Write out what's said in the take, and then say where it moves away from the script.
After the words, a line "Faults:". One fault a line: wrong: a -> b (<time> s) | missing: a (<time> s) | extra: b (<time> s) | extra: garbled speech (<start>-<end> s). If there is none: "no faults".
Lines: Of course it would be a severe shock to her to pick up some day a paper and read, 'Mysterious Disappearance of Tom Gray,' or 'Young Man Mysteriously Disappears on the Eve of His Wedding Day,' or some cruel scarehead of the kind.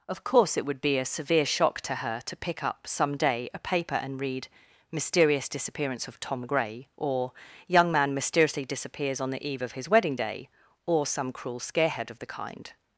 Of course it would be a severe shock to her to pick up some day a paper and read, 'Mysterious Disappearance of Tom Gray,' or 'Young Man Mysteriously Disappears on the Eve of His Wedding Day,' or some cruel scarehead of the kind.
Faults:
no faults